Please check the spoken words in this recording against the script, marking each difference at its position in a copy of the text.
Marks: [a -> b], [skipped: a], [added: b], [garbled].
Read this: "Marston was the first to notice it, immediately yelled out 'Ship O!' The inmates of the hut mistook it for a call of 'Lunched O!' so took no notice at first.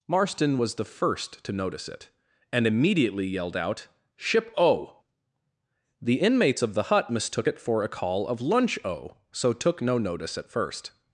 "Marston was the first to notice it, [added: and] immediately yelled out 'Ship O!' The inmates of the hut mistook it for a call of ['Lunched -> Lunch] O!' so took no notice at first.